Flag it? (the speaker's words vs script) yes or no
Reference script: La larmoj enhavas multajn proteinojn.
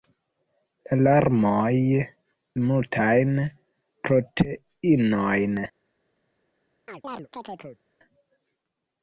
yes